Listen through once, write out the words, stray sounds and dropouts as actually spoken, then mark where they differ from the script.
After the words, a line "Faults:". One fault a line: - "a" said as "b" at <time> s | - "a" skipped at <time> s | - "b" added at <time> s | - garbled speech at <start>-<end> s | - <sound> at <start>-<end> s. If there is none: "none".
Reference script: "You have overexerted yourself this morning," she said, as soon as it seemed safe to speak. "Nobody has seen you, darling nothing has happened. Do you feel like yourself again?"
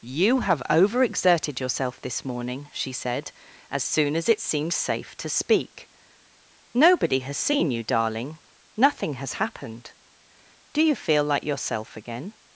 "You have overexerted yourself this morning," she said, as soon as it seemed safe to speak. "Nobody has seen you, darling nothing has happened. Do you feel like yourself again?"
Faults:
none